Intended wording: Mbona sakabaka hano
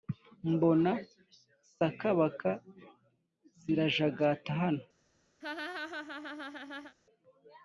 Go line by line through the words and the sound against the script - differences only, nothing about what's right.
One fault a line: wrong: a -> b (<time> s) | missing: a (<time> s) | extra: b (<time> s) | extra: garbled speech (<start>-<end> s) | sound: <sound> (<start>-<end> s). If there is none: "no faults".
extra: zirajagata (3.6 s)
sound: laugh (5.4-7.0 s)